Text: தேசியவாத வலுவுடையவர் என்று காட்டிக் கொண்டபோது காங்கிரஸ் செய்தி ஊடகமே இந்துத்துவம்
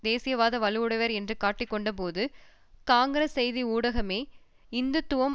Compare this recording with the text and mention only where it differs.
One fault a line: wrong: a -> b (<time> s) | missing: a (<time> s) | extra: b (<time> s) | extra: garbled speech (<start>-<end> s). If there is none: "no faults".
no faults